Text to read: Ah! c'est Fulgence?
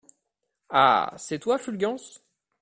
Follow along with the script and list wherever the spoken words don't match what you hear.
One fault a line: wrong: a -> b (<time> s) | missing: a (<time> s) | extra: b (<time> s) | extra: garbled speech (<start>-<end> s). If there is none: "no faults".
extra: toi (1.4 s)